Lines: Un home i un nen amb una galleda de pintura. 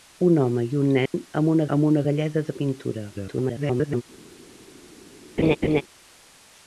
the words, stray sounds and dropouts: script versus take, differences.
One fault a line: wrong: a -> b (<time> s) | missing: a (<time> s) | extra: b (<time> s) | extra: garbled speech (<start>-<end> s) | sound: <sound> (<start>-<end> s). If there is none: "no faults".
sound: dropout (1.1-1.1 s)
extra: amb una (1.8 s)
extra: garbled speech (3.1-4.0 s)
sound: laugh (5.4-5.8 s)